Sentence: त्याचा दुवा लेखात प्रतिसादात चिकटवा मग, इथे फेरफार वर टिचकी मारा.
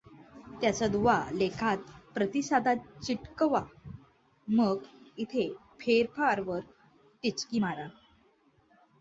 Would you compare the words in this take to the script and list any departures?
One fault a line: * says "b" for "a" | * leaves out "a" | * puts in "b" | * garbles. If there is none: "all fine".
all fine